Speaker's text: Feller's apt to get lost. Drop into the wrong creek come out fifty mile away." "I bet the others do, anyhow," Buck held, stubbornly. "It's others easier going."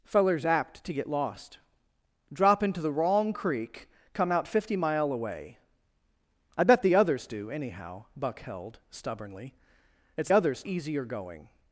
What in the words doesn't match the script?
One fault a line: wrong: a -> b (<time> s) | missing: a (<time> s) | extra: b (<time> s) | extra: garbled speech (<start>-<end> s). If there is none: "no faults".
no faults